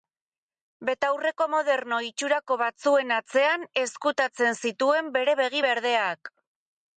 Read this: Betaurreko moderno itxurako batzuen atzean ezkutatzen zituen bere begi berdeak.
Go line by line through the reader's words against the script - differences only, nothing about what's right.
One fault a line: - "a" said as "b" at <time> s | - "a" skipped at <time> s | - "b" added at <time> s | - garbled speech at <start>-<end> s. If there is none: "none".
none